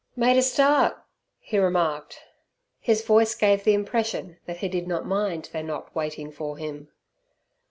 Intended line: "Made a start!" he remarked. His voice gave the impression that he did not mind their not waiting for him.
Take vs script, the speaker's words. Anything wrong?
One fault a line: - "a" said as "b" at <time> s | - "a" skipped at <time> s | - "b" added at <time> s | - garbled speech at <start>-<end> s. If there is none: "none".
none